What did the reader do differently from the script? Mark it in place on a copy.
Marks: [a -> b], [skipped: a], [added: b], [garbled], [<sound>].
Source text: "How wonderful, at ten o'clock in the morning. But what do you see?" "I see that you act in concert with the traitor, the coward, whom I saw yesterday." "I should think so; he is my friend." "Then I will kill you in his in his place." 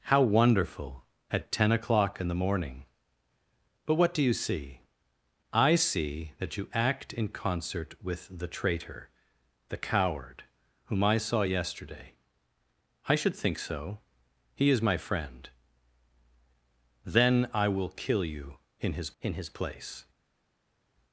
"How wonderful, at ten o'clock in the morning. But what do you see?" "I see that you act in concert with the traitor, the coward, whom I saw yesterday." "I should think so; he is my friend." "Then I will kill you in his in his place."